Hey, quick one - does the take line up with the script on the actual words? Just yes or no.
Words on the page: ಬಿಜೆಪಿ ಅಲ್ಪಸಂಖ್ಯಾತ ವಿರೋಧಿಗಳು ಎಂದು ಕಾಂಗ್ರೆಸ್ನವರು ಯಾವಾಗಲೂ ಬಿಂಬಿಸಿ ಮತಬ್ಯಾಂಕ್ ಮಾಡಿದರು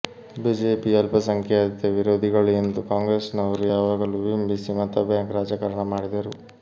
no